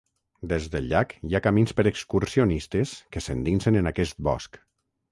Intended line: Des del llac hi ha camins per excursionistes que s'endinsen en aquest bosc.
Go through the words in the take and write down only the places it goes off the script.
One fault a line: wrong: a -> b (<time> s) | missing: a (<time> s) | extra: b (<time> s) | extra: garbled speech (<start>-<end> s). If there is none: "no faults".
no faults